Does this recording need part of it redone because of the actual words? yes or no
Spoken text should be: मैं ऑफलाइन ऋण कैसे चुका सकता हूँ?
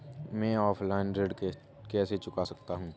no